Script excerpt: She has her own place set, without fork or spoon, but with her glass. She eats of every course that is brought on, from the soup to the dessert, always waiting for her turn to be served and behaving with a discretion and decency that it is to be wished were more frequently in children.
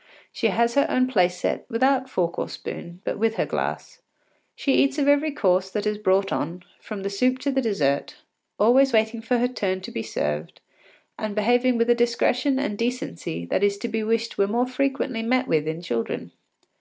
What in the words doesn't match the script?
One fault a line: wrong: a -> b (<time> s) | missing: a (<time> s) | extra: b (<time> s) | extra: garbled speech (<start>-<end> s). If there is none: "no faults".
extra: met with (15.2 s)